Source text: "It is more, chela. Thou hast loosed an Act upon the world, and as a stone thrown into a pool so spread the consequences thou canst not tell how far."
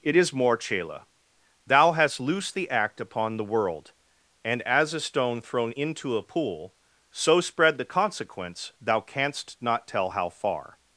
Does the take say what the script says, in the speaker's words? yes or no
no